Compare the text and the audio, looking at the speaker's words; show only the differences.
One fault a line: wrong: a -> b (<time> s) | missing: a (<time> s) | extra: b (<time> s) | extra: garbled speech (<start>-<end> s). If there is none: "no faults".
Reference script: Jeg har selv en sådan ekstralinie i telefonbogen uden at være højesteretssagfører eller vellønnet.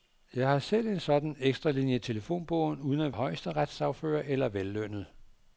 missing: være (3.1 s)